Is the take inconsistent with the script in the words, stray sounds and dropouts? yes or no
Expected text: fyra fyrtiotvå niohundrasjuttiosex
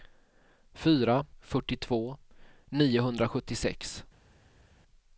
no